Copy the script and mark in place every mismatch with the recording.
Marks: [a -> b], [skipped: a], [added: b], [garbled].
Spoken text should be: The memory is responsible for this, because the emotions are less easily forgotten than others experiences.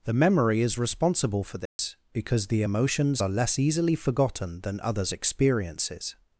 The memory is responsible for this, because the emotions are less easily forgotten than others experiences.